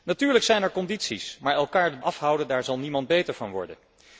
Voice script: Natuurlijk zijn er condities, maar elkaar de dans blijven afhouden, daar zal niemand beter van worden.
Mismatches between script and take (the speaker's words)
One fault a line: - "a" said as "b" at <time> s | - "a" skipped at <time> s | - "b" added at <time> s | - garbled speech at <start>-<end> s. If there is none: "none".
- "dans blijven" skipped at 2.0 s